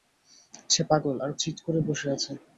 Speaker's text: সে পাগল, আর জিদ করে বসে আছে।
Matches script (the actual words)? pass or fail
pass